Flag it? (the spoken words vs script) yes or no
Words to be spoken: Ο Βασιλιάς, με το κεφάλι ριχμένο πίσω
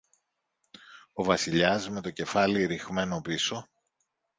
no